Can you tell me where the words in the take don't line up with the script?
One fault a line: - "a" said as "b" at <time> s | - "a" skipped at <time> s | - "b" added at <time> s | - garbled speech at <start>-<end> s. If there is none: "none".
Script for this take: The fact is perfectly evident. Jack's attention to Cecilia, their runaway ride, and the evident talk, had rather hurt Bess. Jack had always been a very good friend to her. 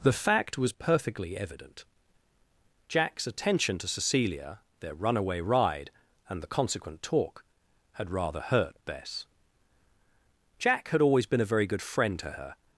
- "is" said as "was" at 0.6 s
- "evident" said as "consequent" at 6.5 s